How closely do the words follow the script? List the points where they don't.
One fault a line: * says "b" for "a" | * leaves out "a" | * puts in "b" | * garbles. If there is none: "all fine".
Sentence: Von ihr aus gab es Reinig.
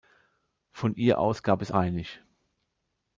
all fine